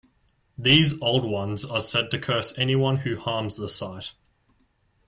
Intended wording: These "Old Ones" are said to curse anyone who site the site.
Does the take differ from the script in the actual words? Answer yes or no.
yes